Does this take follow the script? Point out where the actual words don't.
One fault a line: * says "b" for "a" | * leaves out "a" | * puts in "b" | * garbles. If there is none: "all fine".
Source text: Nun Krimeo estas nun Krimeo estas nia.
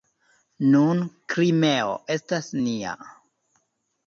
* leaves out "nun Krimeo estas"